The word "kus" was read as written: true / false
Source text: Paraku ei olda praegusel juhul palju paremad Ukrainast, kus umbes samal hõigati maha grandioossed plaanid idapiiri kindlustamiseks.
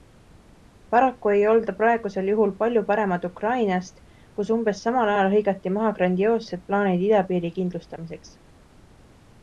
true